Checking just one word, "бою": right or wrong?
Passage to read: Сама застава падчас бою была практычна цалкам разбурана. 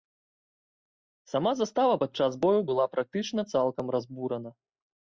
right